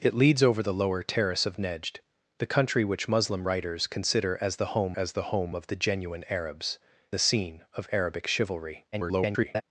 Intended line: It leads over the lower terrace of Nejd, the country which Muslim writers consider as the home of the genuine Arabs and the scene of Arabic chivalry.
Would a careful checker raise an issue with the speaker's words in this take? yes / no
yes